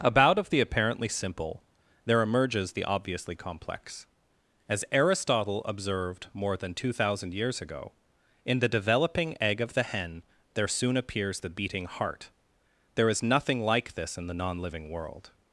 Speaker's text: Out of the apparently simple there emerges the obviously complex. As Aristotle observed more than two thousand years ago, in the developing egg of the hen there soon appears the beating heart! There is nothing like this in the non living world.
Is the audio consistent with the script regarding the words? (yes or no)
no